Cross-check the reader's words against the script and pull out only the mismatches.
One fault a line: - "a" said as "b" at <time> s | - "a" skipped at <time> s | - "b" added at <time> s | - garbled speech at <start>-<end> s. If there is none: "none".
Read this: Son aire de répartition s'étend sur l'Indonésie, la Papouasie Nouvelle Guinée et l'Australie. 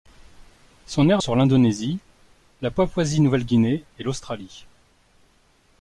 - "de répartition s'étend" skipped at 1.2 s